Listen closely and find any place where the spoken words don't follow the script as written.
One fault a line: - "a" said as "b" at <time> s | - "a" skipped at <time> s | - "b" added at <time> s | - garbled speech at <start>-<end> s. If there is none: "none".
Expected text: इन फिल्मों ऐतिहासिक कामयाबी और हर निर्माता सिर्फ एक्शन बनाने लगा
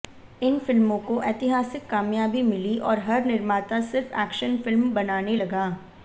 - "को" added at 1.0 s
- "मिली" added at 2.4 s
- "फिल्म" added at 4.6 s